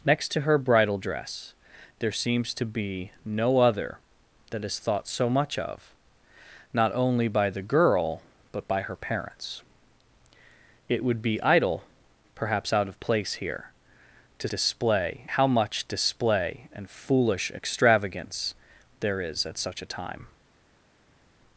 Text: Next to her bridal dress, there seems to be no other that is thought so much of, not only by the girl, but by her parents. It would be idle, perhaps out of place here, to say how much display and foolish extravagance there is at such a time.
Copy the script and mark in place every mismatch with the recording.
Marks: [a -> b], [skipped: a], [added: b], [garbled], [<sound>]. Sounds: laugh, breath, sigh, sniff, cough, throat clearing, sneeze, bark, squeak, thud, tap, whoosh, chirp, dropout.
Next to her bridal dress, there seems to be no other that is thought so much of, not only by the girl, but by her parents. It would be idle, perhaps out of place here, to [say -> display] how much display and foolish extravagance there is at such a time.